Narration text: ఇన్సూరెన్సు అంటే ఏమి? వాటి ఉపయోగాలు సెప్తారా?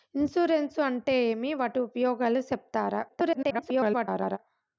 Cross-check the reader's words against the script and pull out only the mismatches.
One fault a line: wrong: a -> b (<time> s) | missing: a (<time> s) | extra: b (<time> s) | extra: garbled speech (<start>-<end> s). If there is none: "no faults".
extra: garbled speech (3.1-4.4 s)